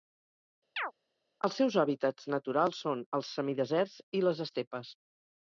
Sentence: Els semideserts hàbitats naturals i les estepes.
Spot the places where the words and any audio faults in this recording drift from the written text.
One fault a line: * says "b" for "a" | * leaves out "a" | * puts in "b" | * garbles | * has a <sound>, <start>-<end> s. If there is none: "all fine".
* has a chirp, 0.8-0.9 s
* says "seus" for "semideserts"
* puts in "són els semideserts"